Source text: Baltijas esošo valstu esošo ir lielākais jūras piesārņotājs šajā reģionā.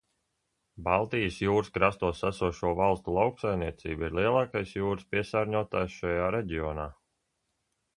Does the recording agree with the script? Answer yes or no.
no